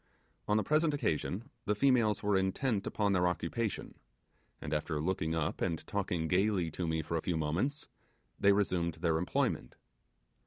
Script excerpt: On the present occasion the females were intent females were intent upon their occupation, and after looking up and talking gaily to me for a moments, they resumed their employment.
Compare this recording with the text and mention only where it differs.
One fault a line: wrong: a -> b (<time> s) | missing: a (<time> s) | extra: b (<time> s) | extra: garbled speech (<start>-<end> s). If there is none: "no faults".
missing: females were intent (2.9 s)
extra: few (7.2 s)